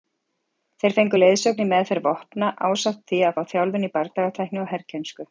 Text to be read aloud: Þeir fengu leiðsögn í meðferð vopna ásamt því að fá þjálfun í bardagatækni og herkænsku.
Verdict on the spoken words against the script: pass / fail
pass